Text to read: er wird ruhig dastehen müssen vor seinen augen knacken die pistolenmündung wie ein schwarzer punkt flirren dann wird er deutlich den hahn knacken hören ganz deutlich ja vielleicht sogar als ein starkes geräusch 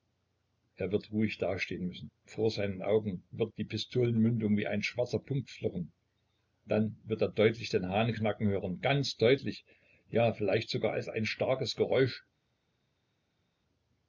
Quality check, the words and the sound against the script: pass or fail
fail